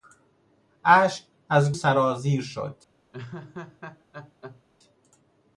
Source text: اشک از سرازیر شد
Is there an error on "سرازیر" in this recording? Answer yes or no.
no